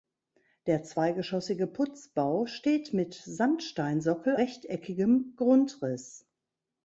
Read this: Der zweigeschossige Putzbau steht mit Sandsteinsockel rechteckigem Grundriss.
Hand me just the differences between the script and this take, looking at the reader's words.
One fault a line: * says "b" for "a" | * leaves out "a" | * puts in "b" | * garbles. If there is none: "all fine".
all fine